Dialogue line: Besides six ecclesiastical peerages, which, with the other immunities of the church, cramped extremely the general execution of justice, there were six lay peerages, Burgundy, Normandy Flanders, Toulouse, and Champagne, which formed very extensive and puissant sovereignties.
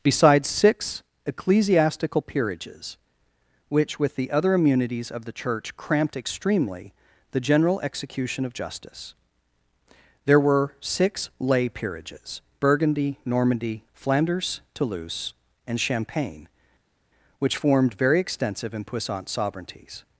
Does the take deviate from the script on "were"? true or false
false